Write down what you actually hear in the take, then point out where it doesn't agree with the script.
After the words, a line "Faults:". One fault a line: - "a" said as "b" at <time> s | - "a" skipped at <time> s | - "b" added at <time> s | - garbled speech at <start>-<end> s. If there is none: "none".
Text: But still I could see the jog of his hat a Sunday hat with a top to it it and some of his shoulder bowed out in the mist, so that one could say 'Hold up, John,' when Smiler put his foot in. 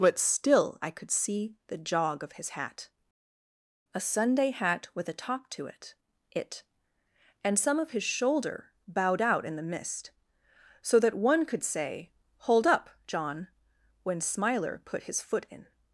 But still I could see the jog of his hat a Sunday hat with a top to it it and some of his shoulder bowed out in the mist, so that one could say 'Hold up, John,' when Smiler put his foot in.
Faults:
none